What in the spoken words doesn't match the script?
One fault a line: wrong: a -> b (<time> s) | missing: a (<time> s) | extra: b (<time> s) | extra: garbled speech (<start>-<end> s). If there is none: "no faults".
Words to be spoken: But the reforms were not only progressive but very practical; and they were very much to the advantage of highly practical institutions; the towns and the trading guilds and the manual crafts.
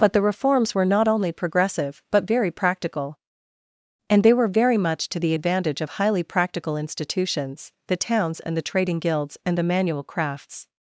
no faults